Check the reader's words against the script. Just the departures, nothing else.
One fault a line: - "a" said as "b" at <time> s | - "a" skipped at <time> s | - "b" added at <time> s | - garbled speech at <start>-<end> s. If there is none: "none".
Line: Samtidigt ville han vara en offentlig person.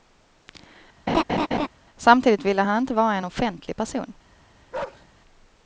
- "inte" added at 2.8 s